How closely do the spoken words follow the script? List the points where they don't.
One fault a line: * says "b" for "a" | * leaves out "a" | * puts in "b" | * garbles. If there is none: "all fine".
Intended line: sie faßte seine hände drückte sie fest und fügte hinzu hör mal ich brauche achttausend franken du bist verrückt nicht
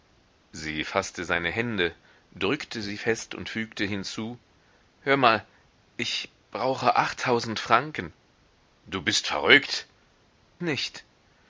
all fine